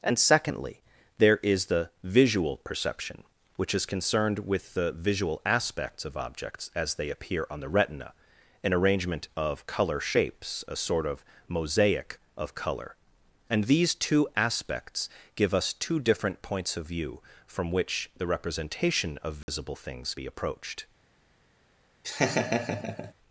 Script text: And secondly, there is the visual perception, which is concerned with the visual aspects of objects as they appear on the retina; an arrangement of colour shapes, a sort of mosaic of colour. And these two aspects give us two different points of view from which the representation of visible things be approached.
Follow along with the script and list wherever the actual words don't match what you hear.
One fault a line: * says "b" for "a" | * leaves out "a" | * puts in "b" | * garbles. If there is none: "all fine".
all fine